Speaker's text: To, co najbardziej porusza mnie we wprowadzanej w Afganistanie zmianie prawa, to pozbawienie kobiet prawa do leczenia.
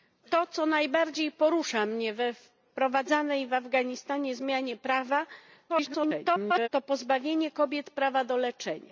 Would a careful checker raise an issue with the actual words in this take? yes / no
yes